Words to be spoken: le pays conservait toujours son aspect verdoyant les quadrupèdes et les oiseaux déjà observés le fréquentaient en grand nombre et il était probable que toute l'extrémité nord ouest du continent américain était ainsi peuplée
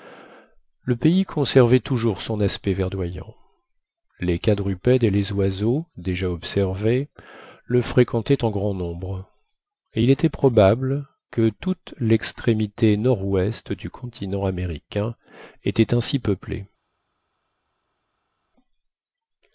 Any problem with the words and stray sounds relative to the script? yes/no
no